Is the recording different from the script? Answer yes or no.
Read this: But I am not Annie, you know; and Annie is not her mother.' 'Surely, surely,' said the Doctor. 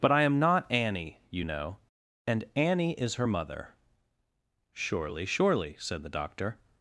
yes